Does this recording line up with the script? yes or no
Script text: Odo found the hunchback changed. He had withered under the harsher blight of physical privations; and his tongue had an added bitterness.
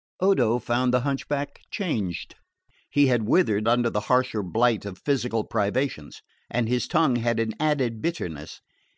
yes